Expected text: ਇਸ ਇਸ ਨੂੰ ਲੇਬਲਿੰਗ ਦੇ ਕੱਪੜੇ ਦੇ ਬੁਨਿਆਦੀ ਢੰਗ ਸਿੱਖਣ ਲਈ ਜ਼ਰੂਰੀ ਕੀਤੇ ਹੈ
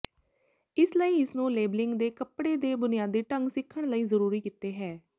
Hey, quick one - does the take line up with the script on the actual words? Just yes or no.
no